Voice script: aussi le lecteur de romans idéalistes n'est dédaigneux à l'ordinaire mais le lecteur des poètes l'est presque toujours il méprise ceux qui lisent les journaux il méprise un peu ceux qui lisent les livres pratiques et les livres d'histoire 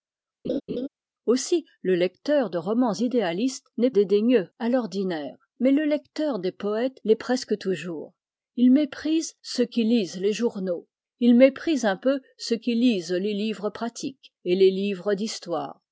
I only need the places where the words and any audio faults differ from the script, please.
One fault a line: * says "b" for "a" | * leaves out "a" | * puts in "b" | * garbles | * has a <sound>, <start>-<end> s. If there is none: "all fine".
* has a laugh, 0.4-0.9 s